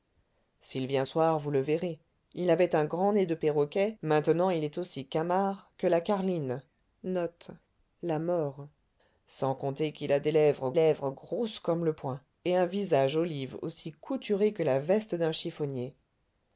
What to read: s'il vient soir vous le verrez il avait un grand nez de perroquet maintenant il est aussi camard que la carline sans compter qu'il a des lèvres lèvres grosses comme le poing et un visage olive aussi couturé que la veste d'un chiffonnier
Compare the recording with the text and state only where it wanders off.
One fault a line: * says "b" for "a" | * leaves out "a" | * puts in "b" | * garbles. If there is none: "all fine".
all fine